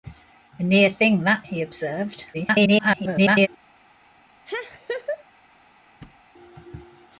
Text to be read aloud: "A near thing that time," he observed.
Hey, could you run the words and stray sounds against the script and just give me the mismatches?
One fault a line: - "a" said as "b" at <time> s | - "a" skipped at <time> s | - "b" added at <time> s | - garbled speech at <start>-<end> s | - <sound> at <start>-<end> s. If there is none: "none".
- "time" skipped at 1.4 s
- garbled speech at 2.3-3.5 s
- laugh at 4.5-5.2 s
- thud at 6.0-6.2 s